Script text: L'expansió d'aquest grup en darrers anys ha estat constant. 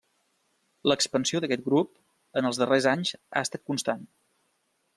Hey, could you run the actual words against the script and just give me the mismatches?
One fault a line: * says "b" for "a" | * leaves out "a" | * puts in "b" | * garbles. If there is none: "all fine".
* puts in "els"